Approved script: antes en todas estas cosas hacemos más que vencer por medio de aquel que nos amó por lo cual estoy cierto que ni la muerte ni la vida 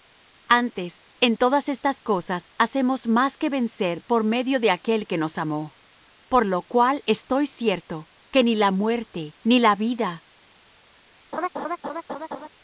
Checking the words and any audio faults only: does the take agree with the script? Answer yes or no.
no